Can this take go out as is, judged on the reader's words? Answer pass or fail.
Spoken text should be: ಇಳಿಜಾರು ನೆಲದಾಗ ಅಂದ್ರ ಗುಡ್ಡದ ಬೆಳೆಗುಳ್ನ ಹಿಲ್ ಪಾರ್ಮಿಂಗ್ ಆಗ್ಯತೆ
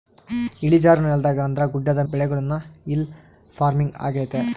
pass